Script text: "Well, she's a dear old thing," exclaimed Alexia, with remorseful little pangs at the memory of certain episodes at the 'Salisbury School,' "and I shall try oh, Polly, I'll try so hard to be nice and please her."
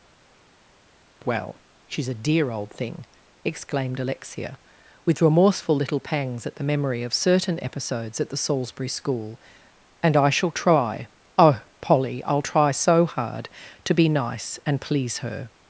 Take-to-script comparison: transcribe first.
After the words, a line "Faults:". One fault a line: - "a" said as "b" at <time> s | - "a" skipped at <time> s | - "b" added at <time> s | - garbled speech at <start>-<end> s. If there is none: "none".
"Well, she's a dear old thing," exclaimed Alexia, with remorseful little pangs at the memory of certain episodes at the 'Salisbury School,' "and I shall try oh, Polly, I'll try so hard to be nice and please her."
Faults:
none